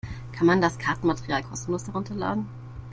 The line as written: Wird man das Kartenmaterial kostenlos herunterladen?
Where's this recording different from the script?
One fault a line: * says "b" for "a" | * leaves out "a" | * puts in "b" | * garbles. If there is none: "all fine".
* says "Kann" for "Wird"